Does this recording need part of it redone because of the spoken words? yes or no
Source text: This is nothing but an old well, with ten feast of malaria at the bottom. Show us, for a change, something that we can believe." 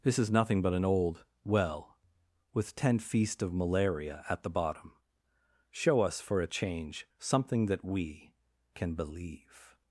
no